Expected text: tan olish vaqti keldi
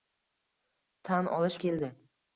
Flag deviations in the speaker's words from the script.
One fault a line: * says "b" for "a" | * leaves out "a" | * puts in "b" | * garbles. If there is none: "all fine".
* leaves out "vaqti"